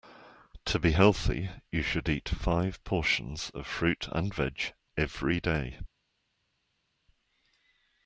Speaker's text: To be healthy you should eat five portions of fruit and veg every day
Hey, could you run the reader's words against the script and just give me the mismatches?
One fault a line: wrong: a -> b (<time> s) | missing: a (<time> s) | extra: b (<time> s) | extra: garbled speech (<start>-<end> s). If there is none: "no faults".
no faults